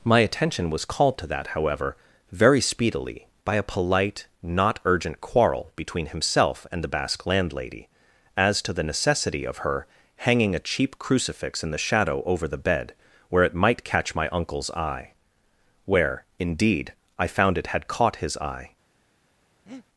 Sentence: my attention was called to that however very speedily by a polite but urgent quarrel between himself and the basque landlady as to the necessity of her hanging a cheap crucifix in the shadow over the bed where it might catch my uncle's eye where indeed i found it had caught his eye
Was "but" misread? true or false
true